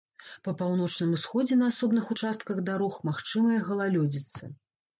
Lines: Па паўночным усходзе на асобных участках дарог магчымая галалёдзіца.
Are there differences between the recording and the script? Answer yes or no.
no